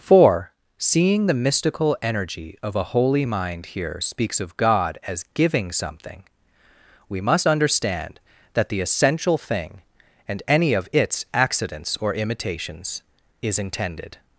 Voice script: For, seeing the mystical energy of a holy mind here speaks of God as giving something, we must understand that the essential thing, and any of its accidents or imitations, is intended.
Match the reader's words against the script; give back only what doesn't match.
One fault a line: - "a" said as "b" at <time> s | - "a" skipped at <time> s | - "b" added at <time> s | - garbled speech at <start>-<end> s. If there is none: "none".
none